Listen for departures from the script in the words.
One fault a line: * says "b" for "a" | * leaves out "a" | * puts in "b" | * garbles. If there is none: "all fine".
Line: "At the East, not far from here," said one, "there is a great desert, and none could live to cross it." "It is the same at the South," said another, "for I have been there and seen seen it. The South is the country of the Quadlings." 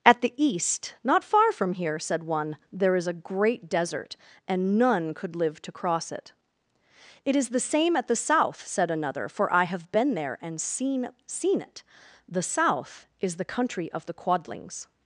all fine